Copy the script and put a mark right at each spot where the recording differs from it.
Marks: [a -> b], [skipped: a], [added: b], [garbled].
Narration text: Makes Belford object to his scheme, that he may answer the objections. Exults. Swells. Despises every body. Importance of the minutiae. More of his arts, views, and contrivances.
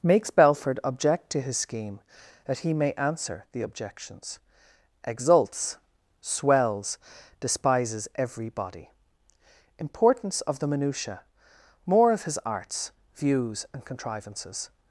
Makes Belford object to his scheme, that he may answer the objections. Exults. Swells. Despises every body. Importance of the minutiae. More of his arts, views, and contrivances.